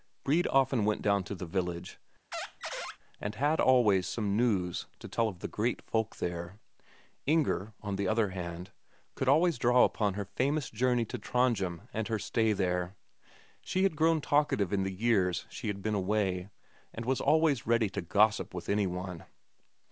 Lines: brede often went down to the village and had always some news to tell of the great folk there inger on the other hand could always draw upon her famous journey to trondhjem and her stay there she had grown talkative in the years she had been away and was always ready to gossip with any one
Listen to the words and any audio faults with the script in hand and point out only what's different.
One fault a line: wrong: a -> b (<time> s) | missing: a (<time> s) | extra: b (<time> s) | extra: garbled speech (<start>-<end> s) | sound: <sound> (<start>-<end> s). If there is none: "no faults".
sound: squeak (2.3-3.0 s)